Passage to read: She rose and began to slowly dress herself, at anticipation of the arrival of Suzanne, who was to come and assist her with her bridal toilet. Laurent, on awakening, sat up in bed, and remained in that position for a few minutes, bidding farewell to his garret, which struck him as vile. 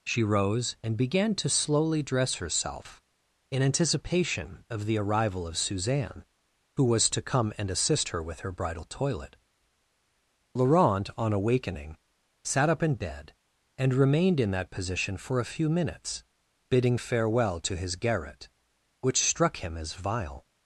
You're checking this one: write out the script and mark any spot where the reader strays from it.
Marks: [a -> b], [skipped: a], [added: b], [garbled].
She rose and began to slowly dress herself, [at -> in] anticipation of the arrival of Suzanne, who was to come and assist her with her bridal toilet. Laurent, on awakening, sat up in bed, and remained in that position for a few minutes, bidding farewell to his garret, which struck him as vile.